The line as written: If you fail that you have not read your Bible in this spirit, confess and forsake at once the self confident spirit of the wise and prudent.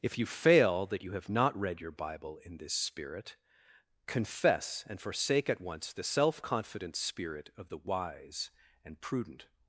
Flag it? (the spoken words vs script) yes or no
no